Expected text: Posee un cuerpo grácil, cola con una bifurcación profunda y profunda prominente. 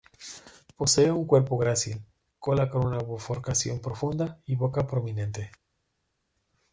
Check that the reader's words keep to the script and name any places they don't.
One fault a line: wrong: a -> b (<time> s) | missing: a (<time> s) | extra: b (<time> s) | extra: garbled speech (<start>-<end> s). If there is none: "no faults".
wrong: profunda -> boca (4.5 s)